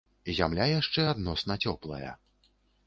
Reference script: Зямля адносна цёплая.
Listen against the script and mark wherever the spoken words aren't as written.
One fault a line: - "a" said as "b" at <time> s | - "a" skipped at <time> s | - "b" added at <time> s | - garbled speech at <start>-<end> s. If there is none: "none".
- "яшчэ" added at 0.8 s